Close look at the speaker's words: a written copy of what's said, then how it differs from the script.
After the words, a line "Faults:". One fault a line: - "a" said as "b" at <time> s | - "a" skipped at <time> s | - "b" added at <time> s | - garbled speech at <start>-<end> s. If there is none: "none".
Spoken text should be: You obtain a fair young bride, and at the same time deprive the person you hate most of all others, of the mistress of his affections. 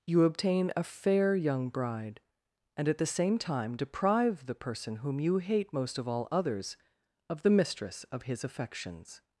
You obtain a fair young bride, and at the same time deprive the person whom you hate most of all others, of the mistress of his affections.
Faults:
- "whom" added at 5.0 s